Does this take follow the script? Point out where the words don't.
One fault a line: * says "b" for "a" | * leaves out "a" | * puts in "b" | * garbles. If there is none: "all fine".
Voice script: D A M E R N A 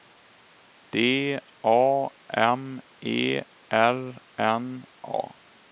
all fine